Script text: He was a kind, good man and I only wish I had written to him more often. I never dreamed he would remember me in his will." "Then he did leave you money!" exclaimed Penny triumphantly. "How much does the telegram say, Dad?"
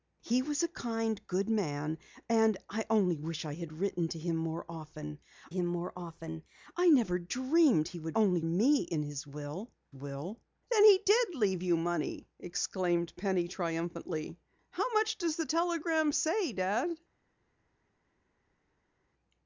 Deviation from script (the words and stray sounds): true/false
true